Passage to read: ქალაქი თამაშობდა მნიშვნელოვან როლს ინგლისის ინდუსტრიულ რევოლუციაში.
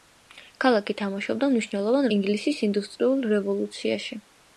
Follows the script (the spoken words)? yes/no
no